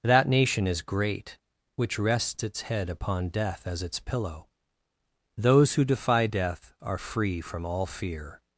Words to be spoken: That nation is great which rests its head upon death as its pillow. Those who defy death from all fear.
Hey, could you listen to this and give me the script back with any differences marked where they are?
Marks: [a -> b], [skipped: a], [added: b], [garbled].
That nation is great which rests its head upon death as its pillow. Those who defy death [added: are free] from all fear.